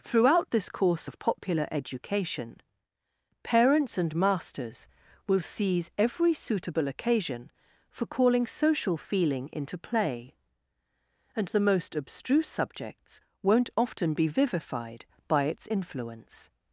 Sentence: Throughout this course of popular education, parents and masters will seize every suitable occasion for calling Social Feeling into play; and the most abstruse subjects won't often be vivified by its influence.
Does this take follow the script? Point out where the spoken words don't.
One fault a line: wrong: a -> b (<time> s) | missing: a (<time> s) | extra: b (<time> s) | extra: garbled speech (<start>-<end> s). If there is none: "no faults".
no faults